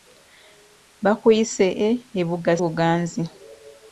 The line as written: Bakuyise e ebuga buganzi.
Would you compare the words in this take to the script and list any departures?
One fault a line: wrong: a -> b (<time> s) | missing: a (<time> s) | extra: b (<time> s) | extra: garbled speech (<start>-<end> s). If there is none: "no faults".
no faults